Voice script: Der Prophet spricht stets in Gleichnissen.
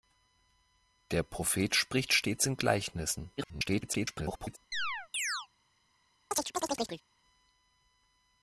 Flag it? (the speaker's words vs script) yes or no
yes